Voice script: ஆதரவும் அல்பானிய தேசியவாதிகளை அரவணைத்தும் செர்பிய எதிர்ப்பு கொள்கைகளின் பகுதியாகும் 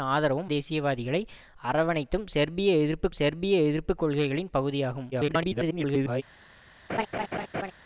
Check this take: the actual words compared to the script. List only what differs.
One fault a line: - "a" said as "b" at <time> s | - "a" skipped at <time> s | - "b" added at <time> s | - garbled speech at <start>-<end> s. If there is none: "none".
- "அல்பானிய" skipped at 0.5 s
- "செர்பிய எதிர்ப்பு" added at 3.1 s
- garbled speech at 5.1-6.2 s